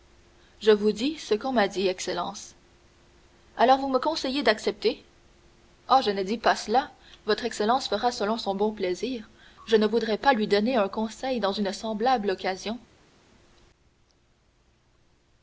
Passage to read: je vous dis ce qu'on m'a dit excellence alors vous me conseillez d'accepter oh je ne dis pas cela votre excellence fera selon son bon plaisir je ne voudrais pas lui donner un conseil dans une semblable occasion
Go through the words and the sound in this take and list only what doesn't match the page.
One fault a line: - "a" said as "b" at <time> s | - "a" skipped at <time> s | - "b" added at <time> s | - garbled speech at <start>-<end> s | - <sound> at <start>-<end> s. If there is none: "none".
none